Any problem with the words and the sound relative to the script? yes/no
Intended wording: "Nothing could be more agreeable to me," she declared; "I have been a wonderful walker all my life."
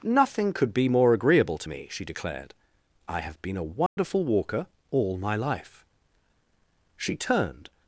yes